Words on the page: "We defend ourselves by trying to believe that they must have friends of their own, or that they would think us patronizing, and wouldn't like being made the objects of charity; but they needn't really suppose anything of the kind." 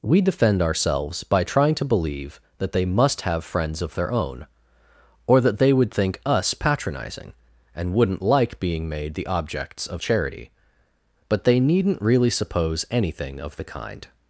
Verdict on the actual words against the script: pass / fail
pass